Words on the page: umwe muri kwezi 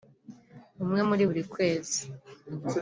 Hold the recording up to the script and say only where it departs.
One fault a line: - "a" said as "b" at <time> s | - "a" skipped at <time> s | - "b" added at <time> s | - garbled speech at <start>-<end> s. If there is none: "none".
- "buri" added at 1.3 s